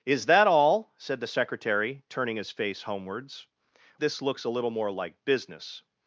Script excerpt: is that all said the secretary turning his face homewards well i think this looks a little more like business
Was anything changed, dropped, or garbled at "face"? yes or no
no